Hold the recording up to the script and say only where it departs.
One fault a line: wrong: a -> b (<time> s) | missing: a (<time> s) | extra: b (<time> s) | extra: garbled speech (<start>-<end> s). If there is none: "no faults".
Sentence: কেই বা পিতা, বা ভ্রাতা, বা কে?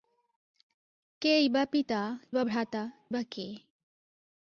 no faults